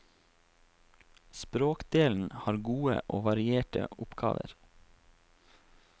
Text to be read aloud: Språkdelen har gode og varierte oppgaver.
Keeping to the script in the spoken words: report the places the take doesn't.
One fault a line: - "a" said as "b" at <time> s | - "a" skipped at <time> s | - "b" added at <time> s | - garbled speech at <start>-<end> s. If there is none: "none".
none